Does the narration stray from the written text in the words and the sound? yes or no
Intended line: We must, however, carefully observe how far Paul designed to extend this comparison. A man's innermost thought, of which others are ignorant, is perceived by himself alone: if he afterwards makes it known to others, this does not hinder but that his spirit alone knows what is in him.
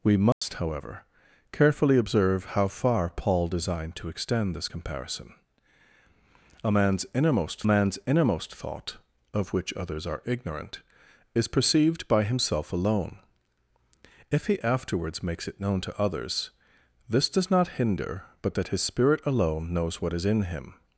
yes